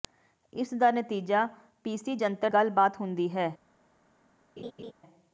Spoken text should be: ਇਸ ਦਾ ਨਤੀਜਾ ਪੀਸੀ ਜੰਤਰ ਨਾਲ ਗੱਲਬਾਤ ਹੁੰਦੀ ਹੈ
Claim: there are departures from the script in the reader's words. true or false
true